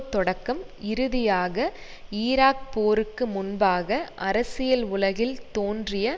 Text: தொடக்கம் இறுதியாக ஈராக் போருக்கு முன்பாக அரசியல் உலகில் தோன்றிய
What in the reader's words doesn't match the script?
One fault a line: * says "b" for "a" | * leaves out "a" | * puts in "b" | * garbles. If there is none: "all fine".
all fine